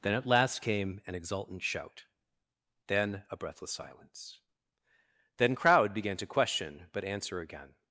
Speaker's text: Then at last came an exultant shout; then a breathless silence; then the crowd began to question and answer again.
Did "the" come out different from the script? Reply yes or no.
yes